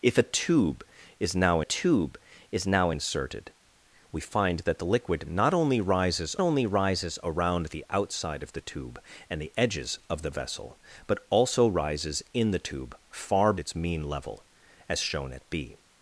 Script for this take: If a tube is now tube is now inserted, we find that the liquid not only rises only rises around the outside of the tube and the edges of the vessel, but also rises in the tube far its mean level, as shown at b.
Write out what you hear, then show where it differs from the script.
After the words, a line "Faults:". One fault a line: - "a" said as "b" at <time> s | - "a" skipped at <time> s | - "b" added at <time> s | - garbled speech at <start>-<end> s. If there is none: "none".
If a tube is now tube is now inserted, we find that the liquid not only rises only rises around the outside of the tube and the edges of the vessel, but also rises in the tube far its mean level, as shown at b.
Faults:
none